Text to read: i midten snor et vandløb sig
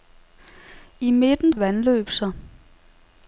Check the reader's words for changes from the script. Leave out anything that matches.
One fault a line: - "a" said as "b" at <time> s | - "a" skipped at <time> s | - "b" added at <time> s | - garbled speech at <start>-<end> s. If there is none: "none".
- "snor" skipped at 1.5 s